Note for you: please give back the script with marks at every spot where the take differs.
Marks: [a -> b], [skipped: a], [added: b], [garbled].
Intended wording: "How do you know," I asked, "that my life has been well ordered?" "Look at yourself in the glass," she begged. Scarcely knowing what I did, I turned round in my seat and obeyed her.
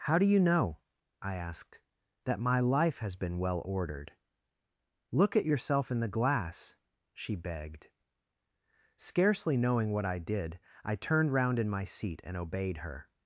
"How do you know," I asked, "that my life has been well ordered?" "Look at yourself in the glass," she begged. Scarcely knowing what I did, I turned round in my seat and obeyed her.